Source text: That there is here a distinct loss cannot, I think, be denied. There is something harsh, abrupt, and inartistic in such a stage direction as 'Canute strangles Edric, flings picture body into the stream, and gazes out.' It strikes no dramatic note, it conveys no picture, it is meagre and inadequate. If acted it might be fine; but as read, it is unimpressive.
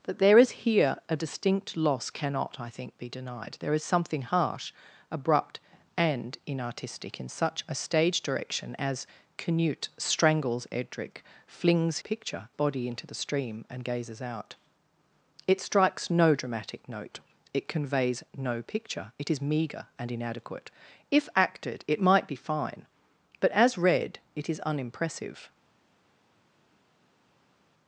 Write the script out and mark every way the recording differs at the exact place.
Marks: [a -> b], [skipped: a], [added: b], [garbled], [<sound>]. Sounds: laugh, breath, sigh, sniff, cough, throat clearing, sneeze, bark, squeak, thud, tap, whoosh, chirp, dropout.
That there is here a distinct loss cannot, I think, be denied. There is something harsh, abrupt, and inartistic in such a stage direction as 'Canute strangles Edric, flings picture body into the stream, and gazes out.' It strikes no dramatic note, it conveys no picture, it is meagre and inadequate. If acted it might be fine; but as read, it is unimpressive.